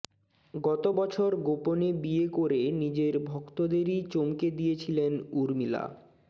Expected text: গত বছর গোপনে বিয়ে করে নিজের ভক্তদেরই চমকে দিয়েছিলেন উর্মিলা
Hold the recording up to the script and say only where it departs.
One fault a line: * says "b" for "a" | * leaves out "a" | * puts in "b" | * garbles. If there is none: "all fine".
all fine